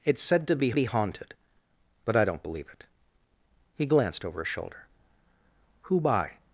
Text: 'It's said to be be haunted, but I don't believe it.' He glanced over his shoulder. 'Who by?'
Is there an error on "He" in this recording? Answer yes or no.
no